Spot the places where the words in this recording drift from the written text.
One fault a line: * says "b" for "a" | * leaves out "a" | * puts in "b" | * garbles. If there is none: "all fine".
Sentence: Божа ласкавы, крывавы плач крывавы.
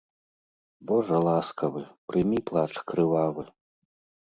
* says "прымі" for "крывавы"